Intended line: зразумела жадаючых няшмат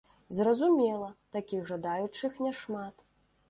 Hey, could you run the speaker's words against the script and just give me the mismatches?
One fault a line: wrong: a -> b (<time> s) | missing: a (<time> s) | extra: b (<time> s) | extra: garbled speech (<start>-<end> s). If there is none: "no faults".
extra: такіх (1.4 s)